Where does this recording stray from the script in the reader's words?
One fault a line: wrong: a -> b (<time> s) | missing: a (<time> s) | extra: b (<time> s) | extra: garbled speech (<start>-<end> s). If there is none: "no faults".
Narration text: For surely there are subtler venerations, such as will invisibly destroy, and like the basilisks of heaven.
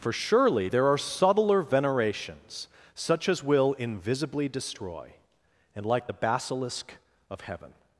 wrong: basilisks -> basilisk (6.1 s)